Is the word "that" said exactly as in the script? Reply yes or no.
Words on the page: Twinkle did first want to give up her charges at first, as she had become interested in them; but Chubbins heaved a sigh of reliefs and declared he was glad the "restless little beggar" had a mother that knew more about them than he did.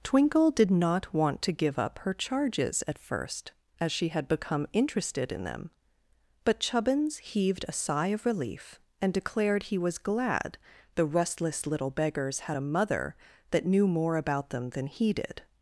yes